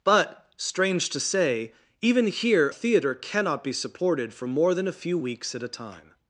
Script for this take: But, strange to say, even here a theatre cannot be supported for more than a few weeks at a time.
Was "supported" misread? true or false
false